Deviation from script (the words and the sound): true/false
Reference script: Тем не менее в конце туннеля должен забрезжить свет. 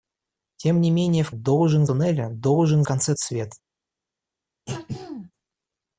true